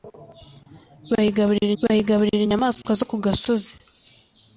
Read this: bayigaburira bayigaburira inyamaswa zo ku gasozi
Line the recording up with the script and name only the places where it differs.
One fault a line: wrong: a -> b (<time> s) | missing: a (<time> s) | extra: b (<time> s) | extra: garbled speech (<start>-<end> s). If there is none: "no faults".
no faults